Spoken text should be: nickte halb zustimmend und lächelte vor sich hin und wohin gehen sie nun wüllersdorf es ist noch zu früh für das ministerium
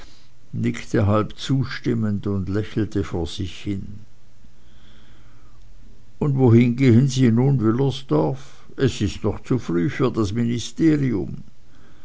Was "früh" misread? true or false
false